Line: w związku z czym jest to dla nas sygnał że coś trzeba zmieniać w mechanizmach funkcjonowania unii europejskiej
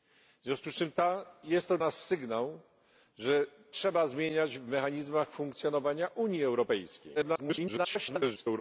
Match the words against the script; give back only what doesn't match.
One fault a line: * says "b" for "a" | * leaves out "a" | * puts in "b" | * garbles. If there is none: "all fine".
* leaves out "dla"
* leaves out "coś"
* garbles